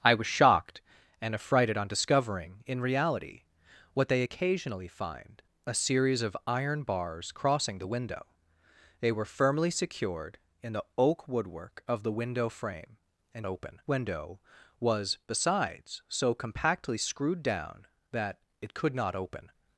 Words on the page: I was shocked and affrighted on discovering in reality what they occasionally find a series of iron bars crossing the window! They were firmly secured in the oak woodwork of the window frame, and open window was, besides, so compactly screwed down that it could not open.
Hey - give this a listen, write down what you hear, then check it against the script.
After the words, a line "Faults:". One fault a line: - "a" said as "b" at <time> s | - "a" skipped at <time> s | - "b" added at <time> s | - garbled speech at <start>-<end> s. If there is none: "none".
I was shocked and affrighted on discovering in reality what they occasionally find a series of iron bars crossing the window! They were firmly secured in the oak woodwork of the window frame, and open window was, besides, so compactly screwed down that it could not open.
Faults:
none